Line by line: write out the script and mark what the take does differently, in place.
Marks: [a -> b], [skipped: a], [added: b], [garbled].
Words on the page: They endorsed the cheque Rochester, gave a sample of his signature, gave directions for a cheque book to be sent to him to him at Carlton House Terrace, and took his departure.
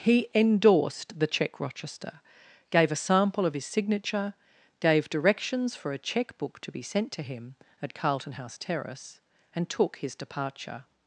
[They -> He] endorsed the cheque Rochester, gave a sample of his signature, gave directions for a cheque book to be sent to him [skipped: to him] at Carlton House Terrace, and took his departure.